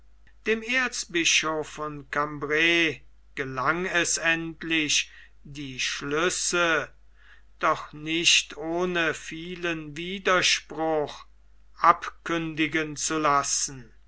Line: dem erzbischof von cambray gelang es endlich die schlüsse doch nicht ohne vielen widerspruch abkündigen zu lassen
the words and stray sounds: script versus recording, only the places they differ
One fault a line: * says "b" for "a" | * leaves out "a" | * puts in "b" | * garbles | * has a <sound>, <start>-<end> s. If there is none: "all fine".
all fine